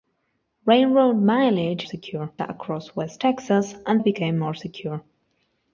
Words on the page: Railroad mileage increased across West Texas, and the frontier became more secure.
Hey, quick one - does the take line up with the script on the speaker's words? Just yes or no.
no